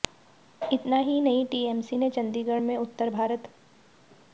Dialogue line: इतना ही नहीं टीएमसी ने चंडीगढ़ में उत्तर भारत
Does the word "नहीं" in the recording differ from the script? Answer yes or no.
no